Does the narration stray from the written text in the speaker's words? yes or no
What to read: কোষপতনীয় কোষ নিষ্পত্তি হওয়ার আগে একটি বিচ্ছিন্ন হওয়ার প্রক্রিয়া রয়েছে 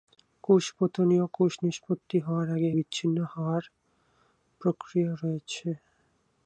yes